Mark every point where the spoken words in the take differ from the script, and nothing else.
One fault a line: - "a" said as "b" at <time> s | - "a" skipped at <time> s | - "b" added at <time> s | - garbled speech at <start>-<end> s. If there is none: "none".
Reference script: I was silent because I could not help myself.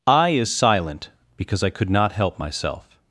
- "was" said as "is" at 0.3 s